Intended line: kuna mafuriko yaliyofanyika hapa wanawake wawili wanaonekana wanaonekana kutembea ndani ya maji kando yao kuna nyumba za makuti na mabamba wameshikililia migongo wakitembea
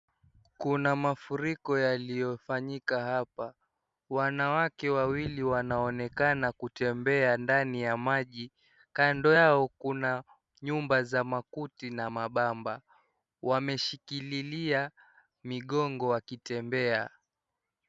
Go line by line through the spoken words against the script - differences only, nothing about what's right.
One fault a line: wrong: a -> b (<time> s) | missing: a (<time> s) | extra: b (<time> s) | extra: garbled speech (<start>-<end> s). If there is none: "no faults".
missing: wanaonekana (6.5 s)